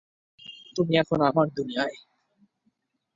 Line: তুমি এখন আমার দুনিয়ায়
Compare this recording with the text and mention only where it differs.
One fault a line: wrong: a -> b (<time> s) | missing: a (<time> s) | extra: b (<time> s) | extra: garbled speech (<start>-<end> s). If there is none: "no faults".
no faults